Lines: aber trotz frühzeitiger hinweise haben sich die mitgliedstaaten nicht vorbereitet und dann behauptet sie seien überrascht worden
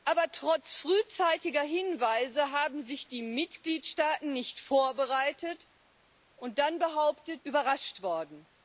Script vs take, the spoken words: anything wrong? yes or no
yes